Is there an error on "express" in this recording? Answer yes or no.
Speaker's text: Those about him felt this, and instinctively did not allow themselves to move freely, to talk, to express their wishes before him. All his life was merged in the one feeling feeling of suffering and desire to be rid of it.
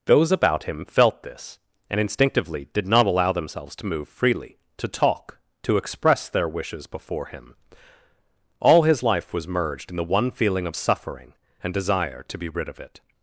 no